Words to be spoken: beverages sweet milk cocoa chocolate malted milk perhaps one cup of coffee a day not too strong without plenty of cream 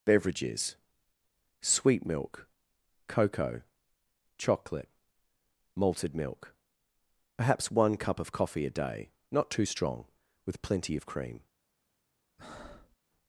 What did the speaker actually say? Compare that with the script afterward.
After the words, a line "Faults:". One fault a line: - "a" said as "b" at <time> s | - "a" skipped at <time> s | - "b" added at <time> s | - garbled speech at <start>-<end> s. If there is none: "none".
beverages sweet milk cocoa chocolate malted milk perhaps one cup of coffee a day not too strong with plenty of cream
Faults:
- "without" said as "with" at 10.5 s